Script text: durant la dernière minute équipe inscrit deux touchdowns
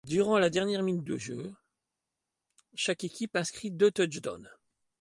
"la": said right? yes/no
yes